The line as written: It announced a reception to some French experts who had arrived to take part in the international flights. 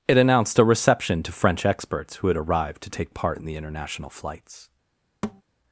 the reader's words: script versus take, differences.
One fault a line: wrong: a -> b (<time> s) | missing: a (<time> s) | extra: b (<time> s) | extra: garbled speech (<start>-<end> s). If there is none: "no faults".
missing: some (1.3 s)